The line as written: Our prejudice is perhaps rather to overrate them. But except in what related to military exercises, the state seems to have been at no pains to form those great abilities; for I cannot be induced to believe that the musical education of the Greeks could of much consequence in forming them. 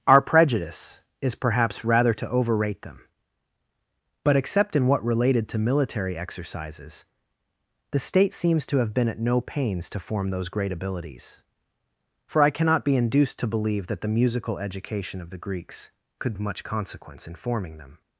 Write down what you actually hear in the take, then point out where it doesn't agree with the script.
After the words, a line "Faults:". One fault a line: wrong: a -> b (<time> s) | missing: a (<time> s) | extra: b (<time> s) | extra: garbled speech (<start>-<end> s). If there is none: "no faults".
Our prejudice is perhaps rather to overrate them. But except in what related to military exercises, the state seems to have been at no pains to form those great abilities; for I cannot be induced to believe that the musical education of the Greeks could of much consequence in forming them.
Faults:
no faults